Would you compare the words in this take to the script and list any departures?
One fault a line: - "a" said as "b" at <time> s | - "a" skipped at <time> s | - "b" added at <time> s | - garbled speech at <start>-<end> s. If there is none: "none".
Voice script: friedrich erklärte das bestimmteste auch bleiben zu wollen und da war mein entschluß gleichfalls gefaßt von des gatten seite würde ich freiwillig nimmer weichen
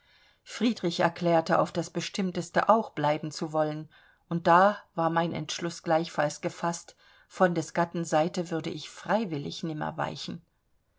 - "auf" added at 1.6 s